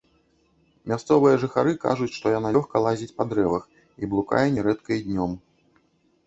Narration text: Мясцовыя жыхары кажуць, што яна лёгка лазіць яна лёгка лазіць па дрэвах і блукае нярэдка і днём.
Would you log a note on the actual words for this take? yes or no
yes